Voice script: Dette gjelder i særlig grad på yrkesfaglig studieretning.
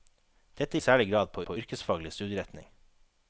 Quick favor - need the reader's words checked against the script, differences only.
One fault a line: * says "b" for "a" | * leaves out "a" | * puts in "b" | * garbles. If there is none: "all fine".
* leaves out "gjelder"
* puts in "på"